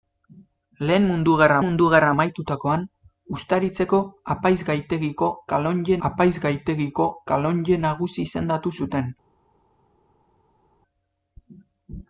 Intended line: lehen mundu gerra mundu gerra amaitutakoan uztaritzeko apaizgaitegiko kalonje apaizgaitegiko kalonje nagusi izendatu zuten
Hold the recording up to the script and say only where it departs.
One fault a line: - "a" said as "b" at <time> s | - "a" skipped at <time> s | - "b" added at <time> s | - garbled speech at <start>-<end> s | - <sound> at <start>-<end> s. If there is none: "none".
none